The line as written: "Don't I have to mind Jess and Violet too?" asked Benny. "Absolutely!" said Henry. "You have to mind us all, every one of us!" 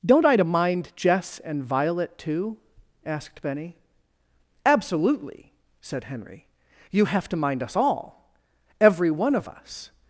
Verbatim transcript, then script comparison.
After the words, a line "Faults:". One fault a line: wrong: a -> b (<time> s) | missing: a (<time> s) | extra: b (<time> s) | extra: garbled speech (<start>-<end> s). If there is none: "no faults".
"Don't I to mind Jess and Violet too?" asked Benny. "Absolutely!" said Henry. "You have to mind us all, every one of us!"
Faults:
missing: have (0.3 s)